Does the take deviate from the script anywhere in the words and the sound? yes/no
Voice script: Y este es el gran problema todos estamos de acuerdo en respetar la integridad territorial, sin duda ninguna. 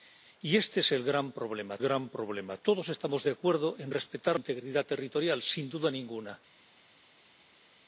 yes